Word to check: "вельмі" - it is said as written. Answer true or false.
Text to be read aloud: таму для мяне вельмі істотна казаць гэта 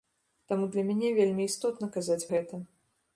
true